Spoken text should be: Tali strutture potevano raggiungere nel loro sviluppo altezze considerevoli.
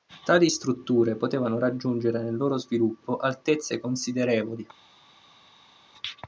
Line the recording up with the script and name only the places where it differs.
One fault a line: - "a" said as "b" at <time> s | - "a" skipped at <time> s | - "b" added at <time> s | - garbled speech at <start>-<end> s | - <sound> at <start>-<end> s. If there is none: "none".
none